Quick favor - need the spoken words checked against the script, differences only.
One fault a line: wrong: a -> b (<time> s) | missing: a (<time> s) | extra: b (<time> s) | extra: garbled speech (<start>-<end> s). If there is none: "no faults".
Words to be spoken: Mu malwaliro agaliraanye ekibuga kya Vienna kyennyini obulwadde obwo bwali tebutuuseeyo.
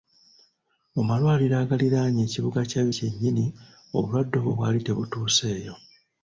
missing: Vienna (2.8 s)